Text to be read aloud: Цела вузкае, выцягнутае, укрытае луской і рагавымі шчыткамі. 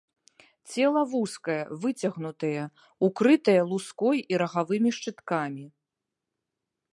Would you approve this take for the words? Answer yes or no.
yes